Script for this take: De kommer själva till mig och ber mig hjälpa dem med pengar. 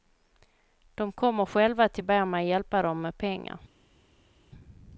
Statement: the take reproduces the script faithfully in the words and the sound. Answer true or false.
false